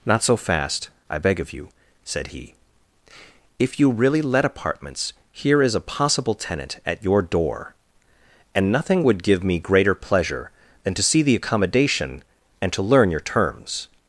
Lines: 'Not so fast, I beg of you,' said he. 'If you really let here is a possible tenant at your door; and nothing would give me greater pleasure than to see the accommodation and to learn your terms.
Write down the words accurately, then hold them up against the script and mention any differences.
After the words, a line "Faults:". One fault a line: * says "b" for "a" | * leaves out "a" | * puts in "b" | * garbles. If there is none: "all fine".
'Not so fast, I beg of you,' said he. 'If you really let apartments, here is a possible tenant at your door; and nothing would give me greater pleasure than to see the accommodation and to learn your terms.
Faults:
* puts in "apartments"